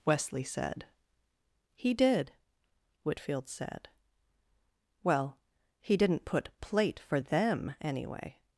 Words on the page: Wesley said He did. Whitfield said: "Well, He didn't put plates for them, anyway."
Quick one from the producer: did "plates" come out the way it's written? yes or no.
no